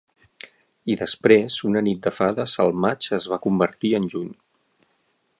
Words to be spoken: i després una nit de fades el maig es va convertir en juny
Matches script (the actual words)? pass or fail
pass